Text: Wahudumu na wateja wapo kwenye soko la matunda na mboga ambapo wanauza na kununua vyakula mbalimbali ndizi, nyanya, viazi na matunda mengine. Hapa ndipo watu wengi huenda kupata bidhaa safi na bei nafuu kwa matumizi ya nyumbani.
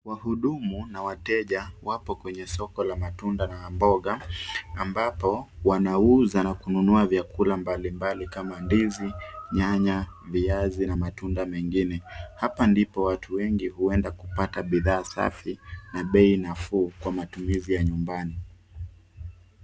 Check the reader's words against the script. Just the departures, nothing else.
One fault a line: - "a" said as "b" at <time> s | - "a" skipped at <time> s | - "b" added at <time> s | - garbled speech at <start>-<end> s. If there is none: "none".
- "kama" added at 8.3 s